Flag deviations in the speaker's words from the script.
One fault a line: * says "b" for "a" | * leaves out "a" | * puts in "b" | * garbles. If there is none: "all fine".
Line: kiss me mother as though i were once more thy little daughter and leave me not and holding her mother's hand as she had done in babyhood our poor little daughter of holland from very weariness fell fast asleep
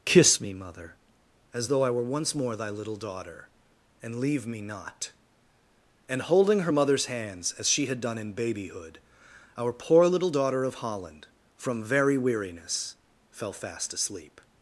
* says "hands" for "hand"